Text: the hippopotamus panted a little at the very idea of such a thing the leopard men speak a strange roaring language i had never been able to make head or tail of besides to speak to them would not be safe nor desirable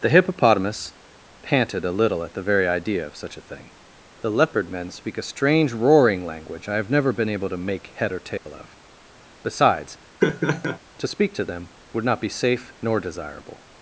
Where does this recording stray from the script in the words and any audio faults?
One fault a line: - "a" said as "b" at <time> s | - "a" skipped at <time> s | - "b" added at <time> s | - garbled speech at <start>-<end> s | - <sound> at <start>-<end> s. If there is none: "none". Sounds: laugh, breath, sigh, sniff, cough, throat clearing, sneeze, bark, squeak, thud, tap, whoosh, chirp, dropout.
- "had" said as "have" at 6.8 s
- dropout at 8.4-8.5 s
- laugh at 10.2-10.8 s